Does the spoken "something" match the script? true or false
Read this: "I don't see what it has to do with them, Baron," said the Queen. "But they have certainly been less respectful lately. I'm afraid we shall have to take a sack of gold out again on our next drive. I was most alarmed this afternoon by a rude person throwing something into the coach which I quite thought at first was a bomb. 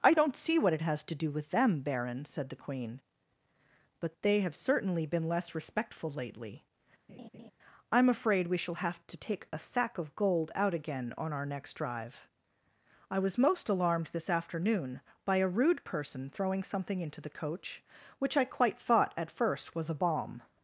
true